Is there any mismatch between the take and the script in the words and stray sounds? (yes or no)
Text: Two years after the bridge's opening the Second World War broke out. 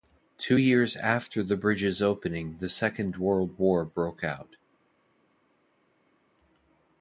no